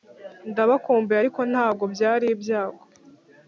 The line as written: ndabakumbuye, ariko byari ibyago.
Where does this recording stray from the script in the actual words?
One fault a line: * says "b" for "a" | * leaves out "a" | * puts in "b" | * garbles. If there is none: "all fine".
* puts in "ntabwo"